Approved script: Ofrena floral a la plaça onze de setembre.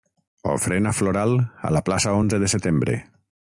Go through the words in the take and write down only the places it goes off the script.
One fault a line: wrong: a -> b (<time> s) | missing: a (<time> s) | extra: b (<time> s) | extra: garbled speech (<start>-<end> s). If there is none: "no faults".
no faults